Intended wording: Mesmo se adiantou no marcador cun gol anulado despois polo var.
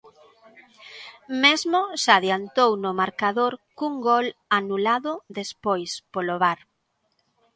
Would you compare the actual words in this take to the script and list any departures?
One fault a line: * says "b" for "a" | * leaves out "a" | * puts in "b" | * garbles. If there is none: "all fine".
all fine